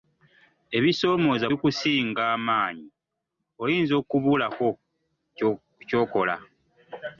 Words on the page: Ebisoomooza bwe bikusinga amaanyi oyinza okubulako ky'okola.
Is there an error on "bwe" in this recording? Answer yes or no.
yes